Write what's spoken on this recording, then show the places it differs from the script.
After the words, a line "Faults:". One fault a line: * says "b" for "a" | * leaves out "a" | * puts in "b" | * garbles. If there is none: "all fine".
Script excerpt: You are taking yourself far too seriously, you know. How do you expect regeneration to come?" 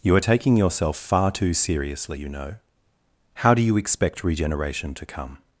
You are taking yourself far too seriously, you know. How do you expect regeneration to come?"
Faults:
all fine